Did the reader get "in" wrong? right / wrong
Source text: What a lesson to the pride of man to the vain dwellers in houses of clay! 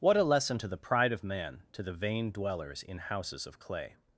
right